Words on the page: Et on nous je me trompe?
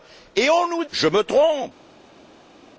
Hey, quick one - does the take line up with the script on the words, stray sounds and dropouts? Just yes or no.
yes